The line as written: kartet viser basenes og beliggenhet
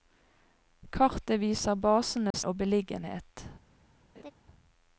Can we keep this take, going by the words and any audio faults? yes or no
no